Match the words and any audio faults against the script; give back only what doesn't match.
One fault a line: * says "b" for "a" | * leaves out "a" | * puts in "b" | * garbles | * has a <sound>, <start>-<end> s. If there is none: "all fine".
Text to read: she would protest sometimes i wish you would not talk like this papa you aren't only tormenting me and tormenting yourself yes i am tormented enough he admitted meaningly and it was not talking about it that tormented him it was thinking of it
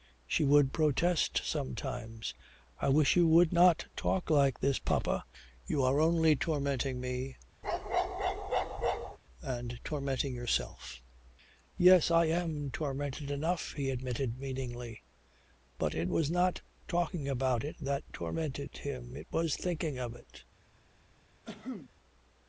* says "are" for "aren't"
* has a bark, 7.6-9.2 s
* says "but" for "and"
* has a cough, 21.4-21.9 s